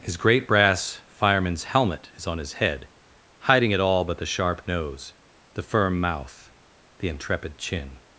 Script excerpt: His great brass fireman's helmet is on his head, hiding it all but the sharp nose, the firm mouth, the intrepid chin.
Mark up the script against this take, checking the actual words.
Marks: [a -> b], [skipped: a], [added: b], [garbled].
His great brass fireman's helmet is on his head, hiding it all but the sharp nose, the firm mouth, the intrepid chin.